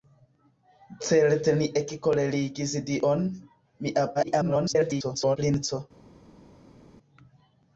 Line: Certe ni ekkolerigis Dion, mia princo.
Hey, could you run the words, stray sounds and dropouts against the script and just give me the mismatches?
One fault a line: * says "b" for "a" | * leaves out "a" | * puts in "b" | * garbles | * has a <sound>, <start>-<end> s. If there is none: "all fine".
* garbles